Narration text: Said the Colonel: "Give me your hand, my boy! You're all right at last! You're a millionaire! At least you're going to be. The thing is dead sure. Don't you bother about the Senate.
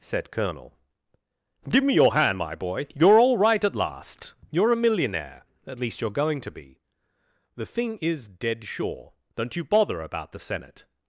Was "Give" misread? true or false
false